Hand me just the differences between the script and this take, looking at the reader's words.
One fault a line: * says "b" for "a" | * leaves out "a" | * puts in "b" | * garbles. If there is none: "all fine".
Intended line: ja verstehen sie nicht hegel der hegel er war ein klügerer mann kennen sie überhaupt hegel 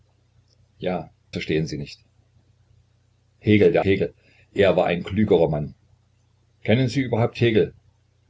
all fine